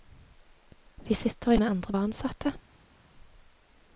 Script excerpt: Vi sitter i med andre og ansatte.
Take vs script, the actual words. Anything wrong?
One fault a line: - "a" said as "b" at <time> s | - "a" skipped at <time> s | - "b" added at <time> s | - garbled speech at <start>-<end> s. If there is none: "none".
none